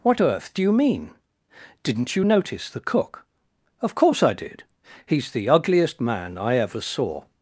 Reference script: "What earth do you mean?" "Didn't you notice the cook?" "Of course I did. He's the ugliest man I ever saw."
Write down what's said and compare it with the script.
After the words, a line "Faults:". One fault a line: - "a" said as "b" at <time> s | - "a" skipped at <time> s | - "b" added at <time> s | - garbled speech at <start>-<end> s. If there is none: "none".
"What earth do you mean?" "Didn't you notice the cook?" "Of course I did. He's the ugliest man I ever saw."
Faults:
none